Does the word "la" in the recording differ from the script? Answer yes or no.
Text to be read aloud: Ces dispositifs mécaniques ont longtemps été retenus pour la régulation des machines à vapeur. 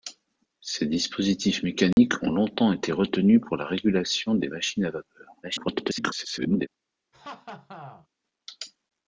no